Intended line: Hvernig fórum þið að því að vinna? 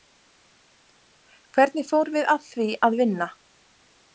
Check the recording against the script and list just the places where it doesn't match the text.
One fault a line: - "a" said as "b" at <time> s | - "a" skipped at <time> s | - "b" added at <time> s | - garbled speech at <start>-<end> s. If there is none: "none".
- "þið" said as "við" at 2.2 s